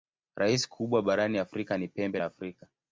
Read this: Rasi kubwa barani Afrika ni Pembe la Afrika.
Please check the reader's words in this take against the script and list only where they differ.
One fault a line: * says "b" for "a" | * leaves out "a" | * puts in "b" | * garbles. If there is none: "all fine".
all fine